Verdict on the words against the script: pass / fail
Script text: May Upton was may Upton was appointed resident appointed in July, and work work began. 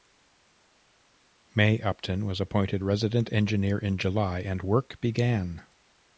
fail